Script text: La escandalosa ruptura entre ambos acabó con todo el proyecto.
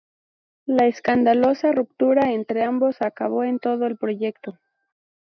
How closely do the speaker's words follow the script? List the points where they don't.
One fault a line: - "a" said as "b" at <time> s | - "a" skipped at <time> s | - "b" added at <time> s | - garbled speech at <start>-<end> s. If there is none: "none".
none